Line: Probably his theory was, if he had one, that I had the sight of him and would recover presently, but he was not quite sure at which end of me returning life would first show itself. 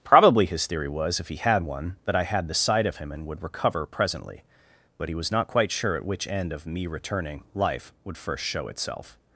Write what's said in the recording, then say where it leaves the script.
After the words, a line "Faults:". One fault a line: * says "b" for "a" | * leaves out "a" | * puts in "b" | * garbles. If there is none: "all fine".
Probably his theory was, if he had one, that I had the sight of him and would recover presently, but he was not quite sure at which end of me returning life would first show itself.
Faults:
all fine